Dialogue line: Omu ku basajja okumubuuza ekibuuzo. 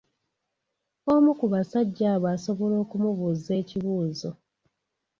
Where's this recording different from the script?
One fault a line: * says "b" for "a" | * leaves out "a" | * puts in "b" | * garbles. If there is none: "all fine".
* puts in "abo asobola"